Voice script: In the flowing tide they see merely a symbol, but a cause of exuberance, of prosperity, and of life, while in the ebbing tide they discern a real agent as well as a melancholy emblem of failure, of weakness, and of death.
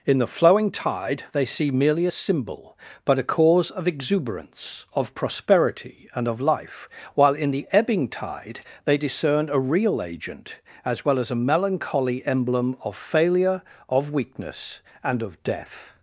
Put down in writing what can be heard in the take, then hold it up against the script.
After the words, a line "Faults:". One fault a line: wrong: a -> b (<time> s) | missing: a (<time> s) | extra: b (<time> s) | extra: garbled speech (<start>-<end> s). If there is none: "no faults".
In the flowing tide they see merely a symbol, but a cause of exuberance, of prosperity, and of life, while in the ebbing tide they discern a real agent as well as a melancholy emblem of failure, of weakness, and of death.
Faults:
no faults